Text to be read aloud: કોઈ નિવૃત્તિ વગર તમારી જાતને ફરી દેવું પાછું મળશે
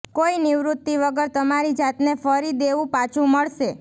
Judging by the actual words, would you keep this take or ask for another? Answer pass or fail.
pass